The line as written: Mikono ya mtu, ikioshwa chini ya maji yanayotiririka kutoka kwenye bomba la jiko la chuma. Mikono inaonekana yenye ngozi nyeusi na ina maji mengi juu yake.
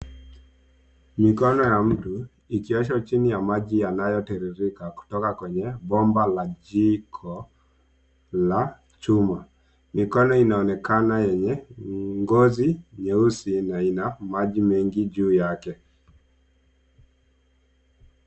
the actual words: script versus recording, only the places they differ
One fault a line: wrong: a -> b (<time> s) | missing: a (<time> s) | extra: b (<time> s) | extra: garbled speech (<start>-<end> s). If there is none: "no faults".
no faults